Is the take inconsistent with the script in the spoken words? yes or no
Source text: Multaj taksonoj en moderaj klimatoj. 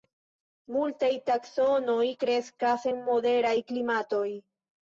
yes